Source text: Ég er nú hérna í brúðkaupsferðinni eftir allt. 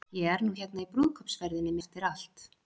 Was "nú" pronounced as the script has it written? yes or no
yes